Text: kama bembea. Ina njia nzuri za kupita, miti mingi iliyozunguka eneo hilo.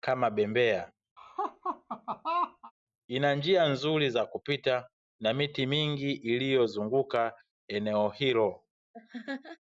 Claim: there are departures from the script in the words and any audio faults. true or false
true